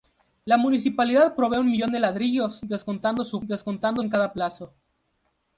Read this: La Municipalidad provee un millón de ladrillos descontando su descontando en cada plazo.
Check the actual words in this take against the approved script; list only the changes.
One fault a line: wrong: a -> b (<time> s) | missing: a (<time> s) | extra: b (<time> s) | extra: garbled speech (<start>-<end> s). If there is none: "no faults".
no faults